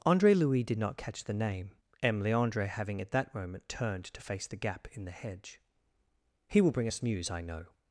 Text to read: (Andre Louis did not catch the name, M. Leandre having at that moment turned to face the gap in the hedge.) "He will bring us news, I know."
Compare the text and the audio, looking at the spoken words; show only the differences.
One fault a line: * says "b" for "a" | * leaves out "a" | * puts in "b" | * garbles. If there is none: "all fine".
all fine